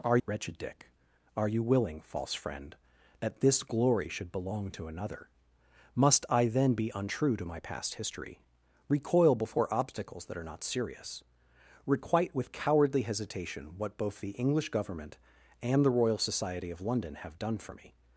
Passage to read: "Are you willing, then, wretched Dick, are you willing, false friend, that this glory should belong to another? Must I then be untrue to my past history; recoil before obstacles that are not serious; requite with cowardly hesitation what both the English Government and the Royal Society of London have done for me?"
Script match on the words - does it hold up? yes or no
no